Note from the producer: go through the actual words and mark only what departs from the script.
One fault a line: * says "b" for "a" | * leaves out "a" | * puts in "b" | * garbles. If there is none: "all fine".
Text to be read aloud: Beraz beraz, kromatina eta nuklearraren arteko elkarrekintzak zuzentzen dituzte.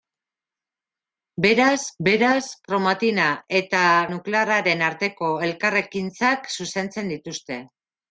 all fine